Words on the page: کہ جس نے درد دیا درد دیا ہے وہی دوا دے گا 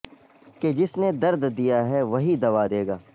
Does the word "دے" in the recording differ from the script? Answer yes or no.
no